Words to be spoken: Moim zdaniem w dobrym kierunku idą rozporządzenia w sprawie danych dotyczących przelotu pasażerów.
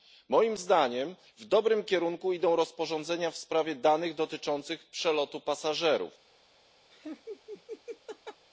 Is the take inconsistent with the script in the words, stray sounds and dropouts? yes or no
yes